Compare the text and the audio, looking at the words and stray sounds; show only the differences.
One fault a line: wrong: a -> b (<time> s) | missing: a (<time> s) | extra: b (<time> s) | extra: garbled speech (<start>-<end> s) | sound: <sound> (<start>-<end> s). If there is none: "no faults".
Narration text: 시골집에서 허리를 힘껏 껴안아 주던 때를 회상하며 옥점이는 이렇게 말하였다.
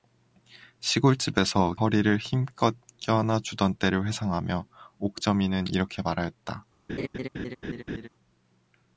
sound: laugh (6.9-8.1 s)